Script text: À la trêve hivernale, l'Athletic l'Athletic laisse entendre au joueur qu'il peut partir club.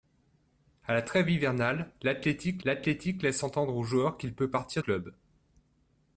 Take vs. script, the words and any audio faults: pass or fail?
pass